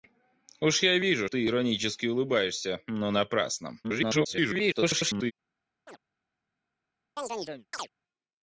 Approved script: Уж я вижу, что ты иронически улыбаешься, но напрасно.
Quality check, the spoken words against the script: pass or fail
fail